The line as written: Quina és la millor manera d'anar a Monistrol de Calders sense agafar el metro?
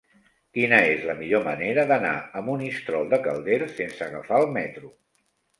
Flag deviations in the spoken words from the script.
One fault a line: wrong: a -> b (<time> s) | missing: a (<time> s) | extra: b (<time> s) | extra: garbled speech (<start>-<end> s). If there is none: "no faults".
no faults